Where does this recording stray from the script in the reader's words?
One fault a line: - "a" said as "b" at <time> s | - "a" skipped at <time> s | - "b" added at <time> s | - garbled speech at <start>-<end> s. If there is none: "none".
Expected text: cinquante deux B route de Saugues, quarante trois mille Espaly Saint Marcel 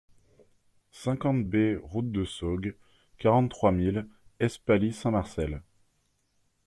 - "deux" skipped at 1.4 s